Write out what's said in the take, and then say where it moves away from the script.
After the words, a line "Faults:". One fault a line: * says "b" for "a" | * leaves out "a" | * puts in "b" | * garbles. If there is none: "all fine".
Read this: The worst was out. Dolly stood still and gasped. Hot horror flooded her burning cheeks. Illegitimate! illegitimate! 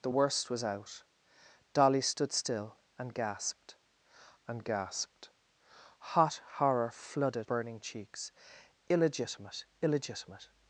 The worst was out. Dolly stood still and gasped and gasped. Hot horror flooded burning cheeks. Illegitimate! illegitimate!
Faults:
* puts in "and gasped"
* leaves out "her"